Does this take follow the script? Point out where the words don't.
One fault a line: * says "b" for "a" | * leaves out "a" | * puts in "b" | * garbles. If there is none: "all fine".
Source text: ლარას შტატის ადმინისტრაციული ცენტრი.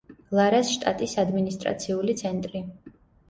all fine